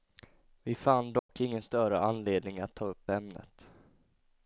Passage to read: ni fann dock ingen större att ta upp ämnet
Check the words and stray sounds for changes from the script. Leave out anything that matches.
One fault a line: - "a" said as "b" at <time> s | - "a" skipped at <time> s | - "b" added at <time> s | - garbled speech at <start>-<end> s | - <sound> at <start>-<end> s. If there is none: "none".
- "ni" said as "vi" at 0.6 s
- dropout at 1.2-1.3 s
- "anledning" added at 2.0 s